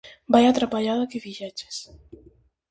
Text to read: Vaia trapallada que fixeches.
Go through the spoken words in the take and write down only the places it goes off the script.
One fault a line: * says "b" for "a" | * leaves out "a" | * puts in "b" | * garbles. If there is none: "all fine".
all fine